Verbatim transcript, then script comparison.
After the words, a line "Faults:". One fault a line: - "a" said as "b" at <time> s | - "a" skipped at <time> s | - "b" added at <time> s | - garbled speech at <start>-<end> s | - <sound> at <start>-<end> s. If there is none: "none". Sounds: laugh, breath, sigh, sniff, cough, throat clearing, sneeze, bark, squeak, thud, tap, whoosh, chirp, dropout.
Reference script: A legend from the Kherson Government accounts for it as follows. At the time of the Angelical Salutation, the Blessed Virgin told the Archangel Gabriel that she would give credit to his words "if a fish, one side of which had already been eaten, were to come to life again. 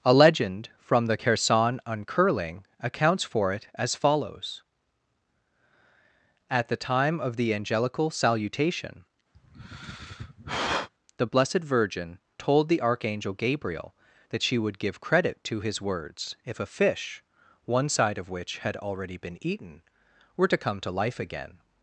A legend from the Kherson Uncurling accounts for it as follows. At the time of the Angelical Salutation, the Blessed Virgin told the Archangel Gabriel that she would give credit to his words "if a fish, one side of which had already been eaten, were to come to life again.
Faults:
- "Government" said as "Uncurling" at 1.9 s
- sigh at 9.3-10.9 s